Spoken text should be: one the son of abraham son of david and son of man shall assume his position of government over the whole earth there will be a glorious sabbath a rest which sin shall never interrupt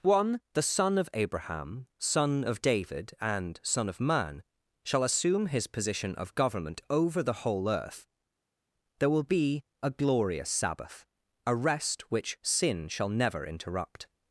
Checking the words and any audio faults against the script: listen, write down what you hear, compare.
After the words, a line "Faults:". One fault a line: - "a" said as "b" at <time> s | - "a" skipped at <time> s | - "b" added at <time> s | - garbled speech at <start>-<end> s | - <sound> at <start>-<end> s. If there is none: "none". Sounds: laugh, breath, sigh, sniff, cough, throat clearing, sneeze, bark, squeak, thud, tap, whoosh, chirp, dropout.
one the son of abraham son of david and son of man shall assume his position of government over the whole earth there will be a glorious sabbath a rest which sin shall never interrupt
Faults:
none